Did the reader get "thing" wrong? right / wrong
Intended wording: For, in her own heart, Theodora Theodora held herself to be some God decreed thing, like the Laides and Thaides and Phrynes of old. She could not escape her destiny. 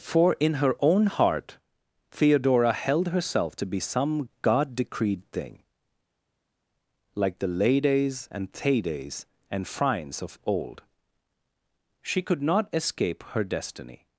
right